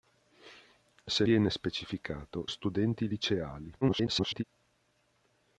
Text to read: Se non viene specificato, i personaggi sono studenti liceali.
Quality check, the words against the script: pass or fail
fail